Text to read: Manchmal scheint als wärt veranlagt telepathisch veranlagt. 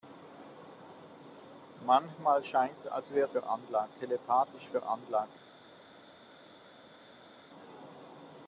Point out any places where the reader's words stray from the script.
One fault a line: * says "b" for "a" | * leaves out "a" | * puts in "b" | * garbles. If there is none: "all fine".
all fine